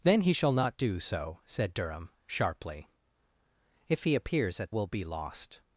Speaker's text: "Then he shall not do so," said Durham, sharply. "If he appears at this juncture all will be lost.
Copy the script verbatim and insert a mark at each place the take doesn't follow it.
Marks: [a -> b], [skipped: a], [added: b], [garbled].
"Then he shall not do so," said Durham, sharply. "If he appears at [skipped: this juncture all] will be lost.